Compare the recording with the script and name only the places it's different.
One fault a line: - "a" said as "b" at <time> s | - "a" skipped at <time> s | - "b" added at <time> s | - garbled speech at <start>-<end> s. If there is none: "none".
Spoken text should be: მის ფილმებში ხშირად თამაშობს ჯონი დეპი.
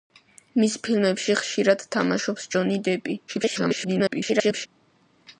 - garbled speech at 3.3-4.7 s